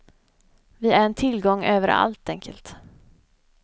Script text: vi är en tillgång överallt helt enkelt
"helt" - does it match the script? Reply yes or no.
no